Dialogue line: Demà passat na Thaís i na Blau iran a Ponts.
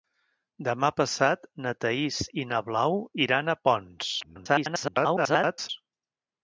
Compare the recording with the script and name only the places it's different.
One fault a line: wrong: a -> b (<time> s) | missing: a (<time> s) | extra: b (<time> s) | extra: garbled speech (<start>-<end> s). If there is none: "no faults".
extra: garbled speech (4.2-5.7 s)